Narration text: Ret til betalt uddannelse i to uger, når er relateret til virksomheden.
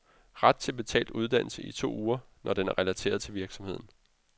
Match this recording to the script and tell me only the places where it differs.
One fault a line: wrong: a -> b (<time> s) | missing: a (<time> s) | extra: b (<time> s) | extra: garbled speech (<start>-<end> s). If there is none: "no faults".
extra: den (2.5 s)